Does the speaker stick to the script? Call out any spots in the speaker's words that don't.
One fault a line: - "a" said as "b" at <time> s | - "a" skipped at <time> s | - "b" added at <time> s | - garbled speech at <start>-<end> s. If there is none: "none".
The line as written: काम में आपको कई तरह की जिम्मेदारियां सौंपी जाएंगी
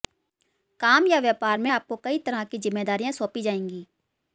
- "या व्यापार" added at 1.1 s